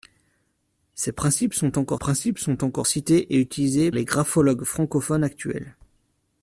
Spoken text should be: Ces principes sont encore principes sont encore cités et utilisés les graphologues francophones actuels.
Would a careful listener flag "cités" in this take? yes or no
no